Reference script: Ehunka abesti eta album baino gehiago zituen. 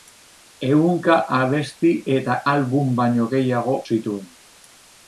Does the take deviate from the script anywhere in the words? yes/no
no